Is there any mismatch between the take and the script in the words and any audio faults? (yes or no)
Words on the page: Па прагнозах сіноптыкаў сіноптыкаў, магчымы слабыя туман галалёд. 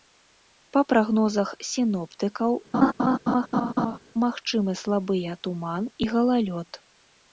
yes